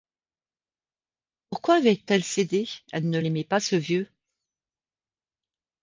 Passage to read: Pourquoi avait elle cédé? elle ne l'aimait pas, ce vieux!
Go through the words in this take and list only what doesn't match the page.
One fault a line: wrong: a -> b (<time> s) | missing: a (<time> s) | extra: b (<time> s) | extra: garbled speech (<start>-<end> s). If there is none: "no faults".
no faults